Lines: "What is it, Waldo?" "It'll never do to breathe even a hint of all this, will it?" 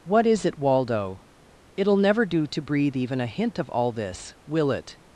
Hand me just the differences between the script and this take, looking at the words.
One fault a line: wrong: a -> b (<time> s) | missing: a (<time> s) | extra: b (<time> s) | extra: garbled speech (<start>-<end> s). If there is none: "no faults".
no faults